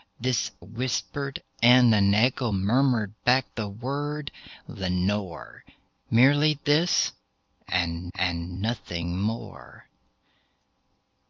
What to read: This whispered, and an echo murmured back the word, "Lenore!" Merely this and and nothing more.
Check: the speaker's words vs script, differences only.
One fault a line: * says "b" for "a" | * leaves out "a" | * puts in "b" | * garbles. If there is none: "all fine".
all fine